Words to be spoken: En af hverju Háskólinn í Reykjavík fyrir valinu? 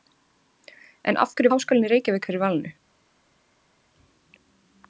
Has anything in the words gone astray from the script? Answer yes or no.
no